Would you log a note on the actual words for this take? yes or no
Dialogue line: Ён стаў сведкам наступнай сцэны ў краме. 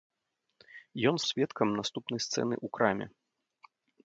yes